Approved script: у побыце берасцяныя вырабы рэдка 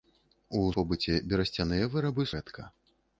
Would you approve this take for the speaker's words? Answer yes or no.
yes